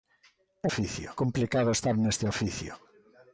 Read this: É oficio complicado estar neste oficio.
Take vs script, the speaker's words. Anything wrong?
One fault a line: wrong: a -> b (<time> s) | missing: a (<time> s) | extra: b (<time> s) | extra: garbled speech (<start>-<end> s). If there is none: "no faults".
no faults